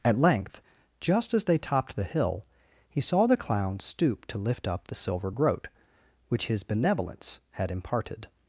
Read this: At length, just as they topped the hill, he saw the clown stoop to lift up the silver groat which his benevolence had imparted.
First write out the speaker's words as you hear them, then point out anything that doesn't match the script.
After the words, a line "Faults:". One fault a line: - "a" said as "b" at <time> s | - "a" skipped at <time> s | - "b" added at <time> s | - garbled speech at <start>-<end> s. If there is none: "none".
At length, just as they topped the hill, he saw the clown stoop to lift up the silver groat which his benevolence had imparted.
Faults:
none